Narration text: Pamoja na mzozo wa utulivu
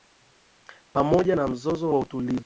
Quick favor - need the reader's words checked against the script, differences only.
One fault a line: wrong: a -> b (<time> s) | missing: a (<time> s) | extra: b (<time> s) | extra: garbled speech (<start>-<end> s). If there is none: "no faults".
no faults